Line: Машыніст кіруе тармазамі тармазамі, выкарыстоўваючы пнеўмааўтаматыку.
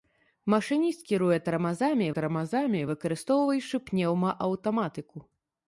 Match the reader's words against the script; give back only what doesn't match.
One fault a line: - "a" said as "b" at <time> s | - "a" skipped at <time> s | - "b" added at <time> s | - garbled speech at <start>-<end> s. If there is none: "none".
none